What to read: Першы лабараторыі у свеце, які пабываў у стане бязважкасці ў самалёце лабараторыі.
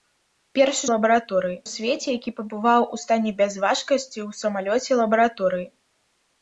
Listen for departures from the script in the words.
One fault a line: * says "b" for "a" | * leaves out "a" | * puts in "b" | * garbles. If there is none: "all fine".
all fine